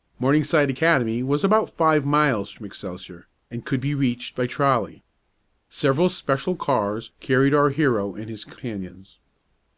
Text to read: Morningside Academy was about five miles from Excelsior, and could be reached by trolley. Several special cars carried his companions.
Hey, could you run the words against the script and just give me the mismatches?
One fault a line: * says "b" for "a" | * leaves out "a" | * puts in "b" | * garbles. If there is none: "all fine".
* puts in "our hero and"